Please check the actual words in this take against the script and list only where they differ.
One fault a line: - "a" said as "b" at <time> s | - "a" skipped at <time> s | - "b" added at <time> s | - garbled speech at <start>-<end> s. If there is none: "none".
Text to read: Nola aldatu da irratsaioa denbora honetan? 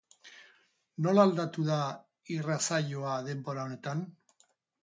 none